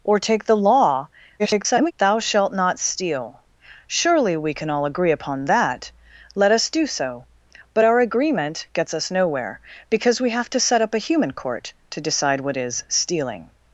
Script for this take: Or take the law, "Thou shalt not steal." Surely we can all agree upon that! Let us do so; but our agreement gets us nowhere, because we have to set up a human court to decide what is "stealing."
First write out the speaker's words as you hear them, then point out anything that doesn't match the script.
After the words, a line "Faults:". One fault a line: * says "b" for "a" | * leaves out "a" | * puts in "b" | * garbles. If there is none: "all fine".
Or take the law, [garbled] "Thou shalt not steal." Surely we can all agree upon that! Let us do so; but our agreement gets us nowhere, because we have to set up a human court to decide what is "stealing."
Faults:
* garbles